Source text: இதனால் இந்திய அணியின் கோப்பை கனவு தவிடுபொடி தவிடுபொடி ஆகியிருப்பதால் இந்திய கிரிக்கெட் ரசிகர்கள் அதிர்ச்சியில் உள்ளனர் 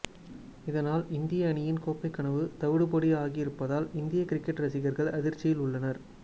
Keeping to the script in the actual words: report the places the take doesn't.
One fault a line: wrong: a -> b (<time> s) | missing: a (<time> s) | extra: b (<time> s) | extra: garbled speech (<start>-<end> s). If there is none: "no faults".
missing: தவிடுபொடி (3.1 s)